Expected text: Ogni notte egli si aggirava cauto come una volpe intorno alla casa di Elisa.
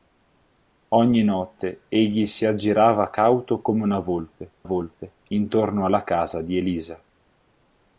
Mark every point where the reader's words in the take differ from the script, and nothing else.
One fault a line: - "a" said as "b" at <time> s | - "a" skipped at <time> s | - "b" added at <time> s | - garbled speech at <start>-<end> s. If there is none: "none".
- "volpe" added at 4.6 s